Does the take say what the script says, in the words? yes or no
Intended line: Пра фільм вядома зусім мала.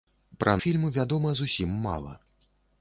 yes